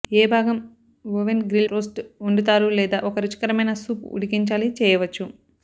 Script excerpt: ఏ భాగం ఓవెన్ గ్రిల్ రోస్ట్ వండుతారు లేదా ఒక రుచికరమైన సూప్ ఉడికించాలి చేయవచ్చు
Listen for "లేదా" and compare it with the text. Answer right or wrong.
right